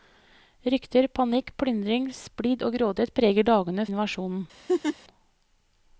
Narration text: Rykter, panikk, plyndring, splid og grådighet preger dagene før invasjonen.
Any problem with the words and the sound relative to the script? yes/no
yes